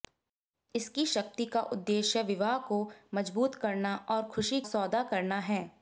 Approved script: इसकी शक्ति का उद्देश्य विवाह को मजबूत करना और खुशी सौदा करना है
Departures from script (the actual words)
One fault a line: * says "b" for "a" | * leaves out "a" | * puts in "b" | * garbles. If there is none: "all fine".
all fine